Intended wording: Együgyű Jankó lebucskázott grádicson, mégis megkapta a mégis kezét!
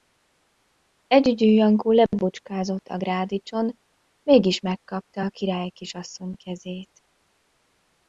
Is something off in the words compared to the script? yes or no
yes